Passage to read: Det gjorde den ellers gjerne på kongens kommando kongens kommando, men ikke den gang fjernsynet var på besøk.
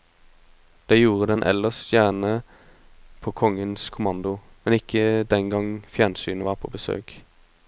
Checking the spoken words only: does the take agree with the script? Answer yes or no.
no